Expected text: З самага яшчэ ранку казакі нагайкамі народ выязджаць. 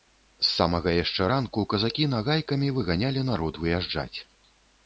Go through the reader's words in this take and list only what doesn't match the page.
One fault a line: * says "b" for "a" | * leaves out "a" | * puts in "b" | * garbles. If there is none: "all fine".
* puts in "выганялі"